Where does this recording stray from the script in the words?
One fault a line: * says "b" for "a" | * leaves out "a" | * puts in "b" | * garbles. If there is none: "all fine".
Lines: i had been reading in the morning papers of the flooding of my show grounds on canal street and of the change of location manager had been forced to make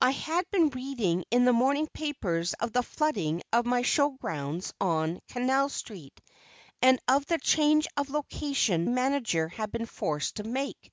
all fine